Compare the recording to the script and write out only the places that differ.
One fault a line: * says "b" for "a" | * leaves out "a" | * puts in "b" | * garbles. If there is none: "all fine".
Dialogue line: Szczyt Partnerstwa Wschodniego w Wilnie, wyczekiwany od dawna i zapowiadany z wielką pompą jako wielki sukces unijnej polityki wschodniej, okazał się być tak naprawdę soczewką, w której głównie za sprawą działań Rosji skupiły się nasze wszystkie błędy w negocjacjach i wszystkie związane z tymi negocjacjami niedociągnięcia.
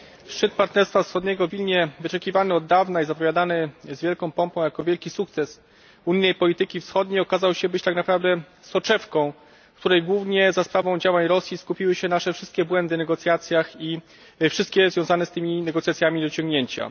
all fine